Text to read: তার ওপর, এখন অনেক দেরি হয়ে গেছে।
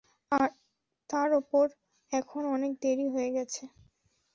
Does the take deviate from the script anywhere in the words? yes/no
no